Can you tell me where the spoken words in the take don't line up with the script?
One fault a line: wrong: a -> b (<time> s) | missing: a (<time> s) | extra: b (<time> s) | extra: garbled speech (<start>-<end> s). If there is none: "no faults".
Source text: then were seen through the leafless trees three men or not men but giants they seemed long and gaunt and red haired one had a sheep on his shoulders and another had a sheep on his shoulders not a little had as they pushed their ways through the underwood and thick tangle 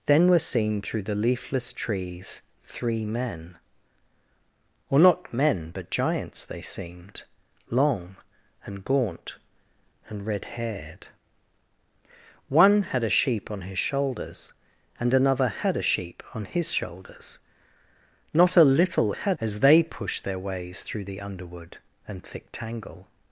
no faults